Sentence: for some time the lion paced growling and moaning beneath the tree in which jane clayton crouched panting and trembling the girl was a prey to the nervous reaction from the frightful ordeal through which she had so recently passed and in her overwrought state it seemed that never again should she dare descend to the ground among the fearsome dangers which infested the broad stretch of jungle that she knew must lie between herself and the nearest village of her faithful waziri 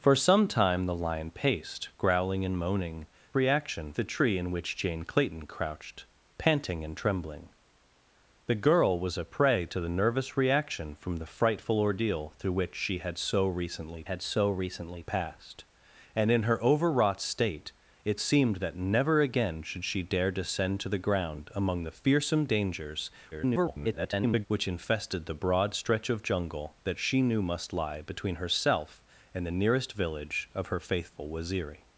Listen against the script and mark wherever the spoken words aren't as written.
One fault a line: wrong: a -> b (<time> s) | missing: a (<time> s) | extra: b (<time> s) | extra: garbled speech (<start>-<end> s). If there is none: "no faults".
wrong: beneath -> reaction (3.3 s)
extra: had so recently (14.0 s)
extra: garbled speech (23.3-24.5 s)